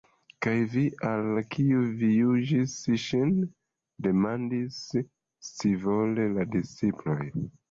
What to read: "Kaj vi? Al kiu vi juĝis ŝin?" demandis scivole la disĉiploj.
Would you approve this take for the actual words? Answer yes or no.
yes